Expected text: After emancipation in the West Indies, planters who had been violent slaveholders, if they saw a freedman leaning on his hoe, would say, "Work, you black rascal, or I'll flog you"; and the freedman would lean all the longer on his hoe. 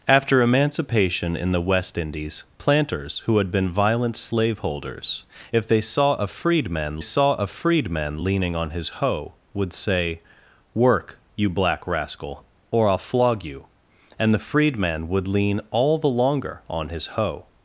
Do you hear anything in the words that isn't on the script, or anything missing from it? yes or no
yes